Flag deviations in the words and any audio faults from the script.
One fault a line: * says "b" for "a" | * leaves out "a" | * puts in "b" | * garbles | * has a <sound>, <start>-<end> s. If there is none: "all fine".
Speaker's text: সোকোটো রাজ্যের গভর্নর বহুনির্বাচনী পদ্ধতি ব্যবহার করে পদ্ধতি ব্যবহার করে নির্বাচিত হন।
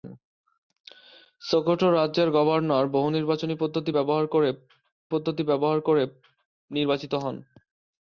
all fine